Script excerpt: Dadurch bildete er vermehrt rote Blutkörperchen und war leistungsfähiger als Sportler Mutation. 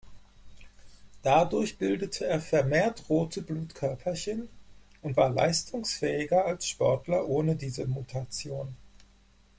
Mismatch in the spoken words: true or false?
true